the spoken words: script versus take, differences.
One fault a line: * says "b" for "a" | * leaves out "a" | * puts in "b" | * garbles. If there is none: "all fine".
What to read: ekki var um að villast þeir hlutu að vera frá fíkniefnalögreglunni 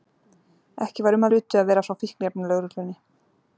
* leaves out "að villast þeir"